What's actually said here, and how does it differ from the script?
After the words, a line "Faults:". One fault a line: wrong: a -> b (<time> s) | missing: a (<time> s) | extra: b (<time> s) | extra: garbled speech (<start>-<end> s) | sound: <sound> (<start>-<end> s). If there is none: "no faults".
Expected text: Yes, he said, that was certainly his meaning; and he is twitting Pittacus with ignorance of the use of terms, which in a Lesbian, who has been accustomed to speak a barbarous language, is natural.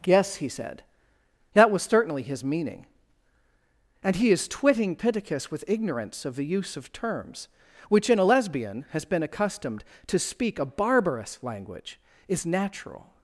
Yes, he said, that was certainly his meaning; and he is twitting Pittacus with ignorance of the use of terms, which in a Lesbian, has been accustomed to speak a barbarous language, is natural.
Faults:
missing: who (8.8 s)